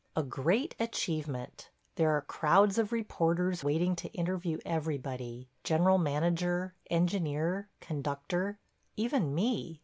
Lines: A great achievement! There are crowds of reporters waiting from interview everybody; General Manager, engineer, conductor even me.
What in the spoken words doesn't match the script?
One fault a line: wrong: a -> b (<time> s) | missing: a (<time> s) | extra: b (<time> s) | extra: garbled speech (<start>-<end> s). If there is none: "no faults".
wrong: from -> to (4.0 s)